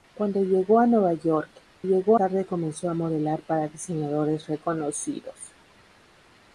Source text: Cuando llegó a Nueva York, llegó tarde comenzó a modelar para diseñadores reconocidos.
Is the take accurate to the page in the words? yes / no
yes